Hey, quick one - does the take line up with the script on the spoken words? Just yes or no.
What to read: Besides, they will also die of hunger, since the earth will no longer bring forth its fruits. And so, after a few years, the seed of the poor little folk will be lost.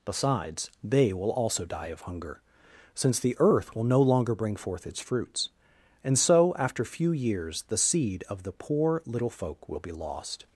no